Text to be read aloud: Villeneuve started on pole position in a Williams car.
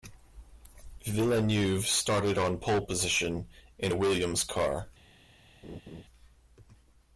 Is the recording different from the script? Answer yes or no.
no